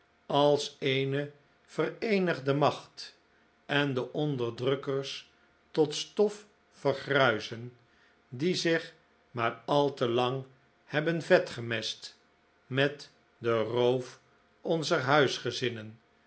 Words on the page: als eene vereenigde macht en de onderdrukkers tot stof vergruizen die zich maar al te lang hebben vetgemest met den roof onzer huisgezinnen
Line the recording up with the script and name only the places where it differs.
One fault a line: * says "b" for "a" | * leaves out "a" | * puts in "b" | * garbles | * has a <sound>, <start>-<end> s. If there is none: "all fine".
all fine